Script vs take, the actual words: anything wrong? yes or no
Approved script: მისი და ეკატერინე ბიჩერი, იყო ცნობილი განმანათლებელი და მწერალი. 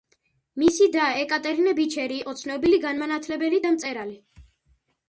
no